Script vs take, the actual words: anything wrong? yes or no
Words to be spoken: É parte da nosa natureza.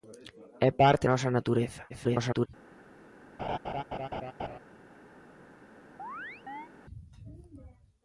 yes